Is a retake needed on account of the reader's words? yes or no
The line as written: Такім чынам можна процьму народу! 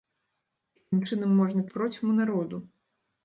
no